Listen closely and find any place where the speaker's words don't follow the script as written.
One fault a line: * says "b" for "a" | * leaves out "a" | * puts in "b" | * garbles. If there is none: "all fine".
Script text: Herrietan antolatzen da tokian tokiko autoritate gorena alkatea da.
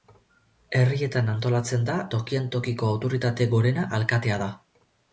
all fine